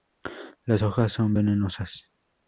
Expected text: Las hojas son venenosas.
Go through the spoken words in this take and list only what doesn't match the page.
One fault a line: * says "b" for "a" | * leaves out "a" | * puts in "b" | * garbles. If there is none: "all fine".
all fine